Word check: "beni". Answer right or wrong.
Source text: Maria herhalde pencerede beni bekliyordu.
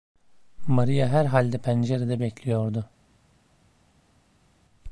wrong